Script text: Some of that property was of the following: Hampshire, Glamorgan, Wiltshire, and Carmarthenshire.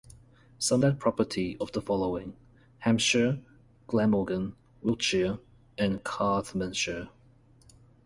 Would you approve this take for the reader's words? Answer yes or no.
no